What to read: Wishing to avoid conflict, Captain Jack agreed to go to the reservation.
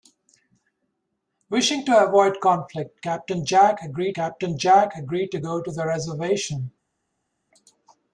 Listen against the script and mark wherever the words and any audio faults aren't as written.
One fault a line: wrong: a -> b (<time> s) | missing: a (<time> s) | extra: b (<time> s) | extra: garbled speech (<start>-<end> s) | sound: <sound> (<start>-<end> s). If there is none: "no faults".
extra: Captain Jack agreed (4.1 s)